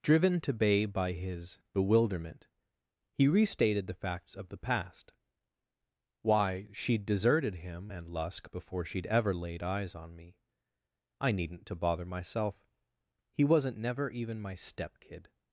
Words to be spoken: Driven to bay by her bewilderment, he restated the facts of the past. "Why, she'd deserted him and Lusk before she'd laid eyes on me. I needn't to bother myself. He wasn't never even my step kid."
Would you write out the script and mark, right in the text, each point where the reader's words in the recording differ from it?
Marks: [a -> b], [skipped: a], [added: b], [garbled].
Driven to bay by [her -> his] bewilderment, he restated the facts of the past. "Why, she'd deserted him and Lusk before she'd [added: ever] laid eyes on me. I needn't to bother myself. He wasn't never even my step kid."